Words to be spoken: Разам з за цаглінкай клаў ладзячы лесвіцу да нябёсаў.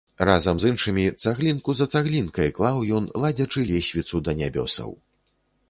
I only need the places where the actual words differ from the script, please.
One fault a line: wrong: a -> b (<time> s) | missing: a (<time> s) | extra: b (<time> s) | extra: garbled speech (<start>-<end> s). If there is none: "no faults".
extra: іншымі цаглінку (0.7 s)
extra: ён (3.0 s)